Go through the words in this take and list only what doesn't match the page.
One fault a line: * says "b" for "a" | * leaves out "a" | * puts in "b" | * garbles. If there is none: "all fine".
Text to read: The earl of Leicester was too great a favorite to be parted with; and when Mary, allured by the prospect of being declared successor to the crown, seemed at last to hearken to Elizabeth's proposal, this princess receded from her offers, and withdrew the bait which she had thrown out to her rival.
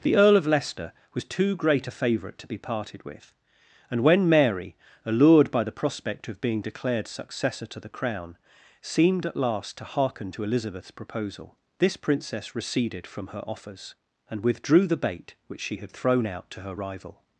all fine